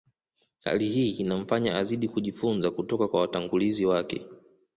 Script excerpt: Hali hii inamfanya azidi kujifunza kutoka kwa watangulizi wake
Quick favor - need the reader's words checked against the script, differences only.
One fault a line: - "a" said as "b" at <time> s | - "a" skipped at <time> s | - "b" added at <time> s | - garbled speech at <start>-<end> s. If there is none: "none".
none